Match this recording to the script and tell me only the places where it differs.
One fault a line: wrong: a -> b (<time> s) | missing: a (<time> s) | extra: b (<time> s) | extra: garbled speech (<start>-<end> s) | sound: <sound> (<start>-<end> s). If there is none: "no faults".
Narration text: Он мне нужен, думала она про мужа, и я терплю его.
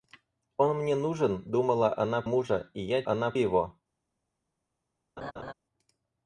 missing: про (2.2 s)
wrong: терплю -> она (3.0 s)
sound: laugh (5.2-5.5 s)